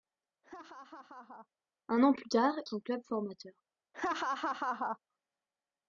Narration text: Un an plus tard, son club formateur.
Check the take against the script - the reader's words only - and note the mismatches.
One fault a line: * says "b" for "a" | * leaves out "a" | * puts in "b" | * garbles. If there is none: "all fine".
all fine